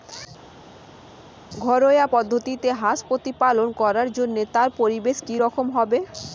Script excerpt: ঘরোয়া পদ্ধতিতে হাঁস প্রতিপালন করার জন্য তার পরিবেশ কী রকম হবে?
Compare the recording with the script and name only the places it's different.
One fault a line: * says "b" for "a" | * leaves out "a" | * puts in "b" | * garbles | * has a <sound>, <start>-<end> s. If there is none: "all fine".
all fine